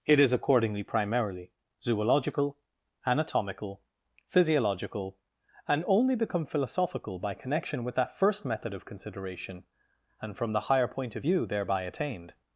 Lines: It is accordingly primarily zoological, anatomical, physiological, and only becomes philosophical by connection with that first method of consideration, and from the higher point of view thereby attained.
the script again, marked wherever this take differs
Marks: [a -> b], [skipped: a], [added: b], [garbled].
It is accordingly primarily zoological, anatomical, physiological, and only [becomes -> become] philosophical by connection with that first method of consideration, and from the higher point of view thereby attained.